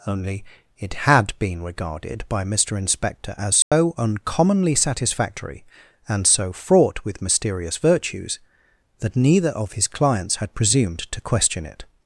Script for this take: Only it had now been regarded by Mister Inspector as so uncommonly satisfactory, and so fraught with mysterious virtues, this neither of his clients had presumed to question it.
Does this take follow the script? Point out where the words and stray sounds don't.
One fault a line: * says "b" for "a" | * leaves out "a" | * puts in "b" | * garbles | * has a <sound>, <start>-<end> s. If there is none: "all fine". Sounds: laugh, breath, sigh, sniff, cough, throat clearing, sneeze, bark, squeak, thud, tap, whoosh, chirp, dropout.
* leaves out "now"
* has a dropout, 3.6-3.7 s
* says "that" for "this"